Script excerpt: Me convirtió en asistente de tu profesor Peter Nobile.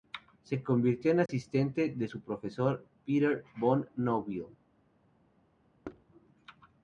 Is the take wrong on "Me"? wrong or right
wrong